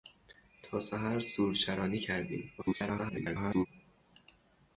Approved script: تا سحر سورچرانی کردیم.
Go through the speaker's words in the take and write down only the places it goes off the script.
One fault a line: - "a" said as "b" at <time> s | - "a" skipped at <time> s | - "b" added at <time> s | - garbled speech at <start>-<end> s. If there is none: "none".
- garbled speech at 2.6-3.7 s